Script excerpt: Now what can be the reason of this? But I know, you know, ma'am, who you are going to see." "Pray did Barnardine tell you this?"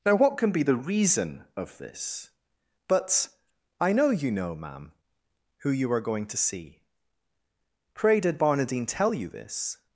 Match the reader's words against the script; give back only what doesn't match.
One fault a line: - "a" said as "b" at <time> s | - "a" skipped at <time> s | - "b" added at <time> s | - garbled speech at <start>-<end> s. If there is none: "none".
none